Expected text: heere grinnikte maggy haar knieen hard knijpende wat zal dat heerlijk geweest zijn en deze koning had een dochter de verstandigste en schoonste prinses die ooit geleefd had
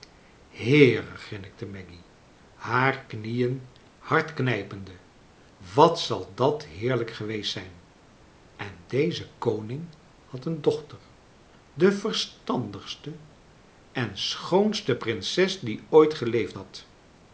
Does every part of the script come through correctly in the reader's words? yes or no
yes